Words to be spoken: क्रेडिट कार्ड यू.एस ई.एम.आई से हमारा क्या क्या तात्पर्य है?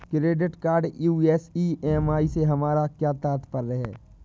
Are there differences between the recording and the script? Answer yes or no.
yes